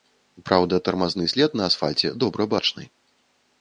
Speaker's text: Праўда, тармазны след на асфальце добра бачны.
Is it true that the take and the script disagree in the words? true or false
false